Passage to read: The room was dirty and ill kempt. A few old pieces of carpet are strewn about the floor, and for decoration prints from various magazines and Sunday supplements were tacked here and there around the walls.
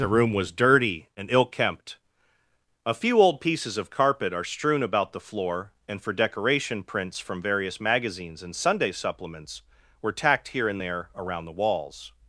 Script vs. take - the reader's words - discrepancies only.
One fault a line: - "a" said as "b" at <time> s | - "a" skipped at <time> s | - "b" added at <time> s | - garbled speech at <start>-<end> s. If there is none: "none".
none